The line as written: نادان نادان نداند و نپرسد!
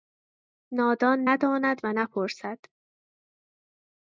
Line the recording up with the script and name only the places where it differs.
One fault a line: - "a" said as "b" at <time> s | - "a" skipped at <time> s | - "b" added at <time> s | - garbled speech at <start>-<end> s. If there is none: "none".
- "نادان" skipped at 1.3 s